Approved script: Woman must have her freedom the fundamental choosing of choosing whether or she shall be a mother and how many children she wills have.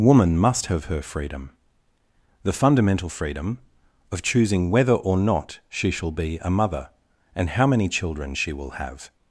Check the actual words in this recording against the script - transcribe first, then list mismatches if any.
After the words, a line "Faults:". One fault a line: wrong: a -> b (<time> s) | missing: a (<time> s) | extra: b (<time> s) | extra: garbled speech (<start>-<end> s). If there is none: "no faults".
Woman must have her freedom the fundamental freedom of choosing whether or not she shall be a mother and how many children she will have.
Faults:
wrong: choosing -> freedom (3.1 s)
extra: not (5.2 s)
wrong: wills -> will (8.5 s)